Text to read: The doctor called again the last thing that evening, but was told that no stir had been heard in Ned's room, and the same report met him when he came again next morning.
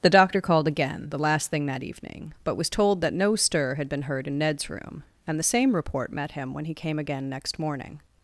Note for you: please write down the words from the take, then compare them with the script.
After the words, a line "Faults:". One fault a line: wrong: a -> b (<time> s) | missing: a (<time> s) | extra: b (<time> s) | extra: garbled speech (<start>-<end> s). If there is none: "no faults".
The doctor called again the last thing that evening, but was told that no stir had been heard in Ned's room, and the same report met him when he came again next morning.
Faults:
no faults